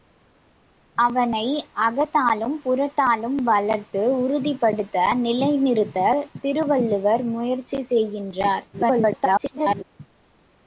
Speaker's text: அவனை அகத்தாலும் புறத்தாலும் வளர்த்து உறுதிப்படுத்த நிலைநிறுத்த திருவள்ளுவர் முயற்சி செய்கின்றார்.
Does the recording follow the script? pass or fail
fail